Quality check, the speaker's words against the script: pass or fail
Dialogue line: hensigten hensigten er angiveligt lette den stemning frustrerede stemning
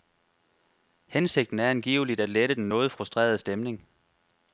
fail